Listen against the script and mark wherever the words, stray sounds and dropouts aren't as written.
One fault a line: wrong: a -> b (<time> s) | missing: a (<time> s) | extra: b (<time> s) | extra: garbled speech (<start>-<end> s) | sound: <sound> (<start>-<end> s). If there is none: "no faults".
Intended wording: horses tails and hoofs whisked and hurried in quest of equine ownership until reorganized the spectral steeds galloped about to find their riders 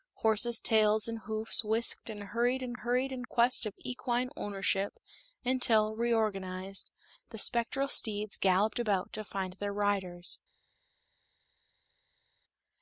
extra: hurried in (2.7 s)